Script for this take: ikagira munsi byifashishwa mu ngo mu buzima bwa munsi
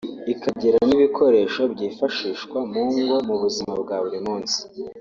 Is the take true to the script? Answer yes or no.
no